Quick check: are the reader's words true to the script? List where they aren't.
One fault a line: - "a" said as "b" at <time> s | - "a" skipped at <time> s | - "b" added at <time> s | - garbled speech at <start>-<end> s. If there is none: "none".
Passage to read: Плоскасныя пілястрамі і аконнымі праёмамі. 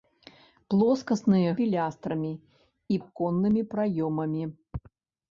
none